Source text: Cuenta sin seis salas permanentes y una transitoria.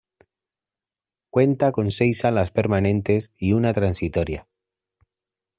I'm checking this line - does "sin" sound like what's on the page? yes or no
no